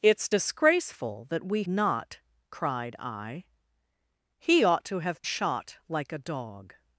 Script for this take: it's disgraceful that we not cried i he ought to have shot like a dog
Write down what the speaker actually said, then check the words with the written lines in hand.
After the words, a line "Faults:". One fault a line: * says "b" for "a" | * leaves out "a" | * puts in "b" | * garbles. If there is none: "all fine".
it's disgraceful that we not cried i he ought to have shot like a dog
Faults:
all fine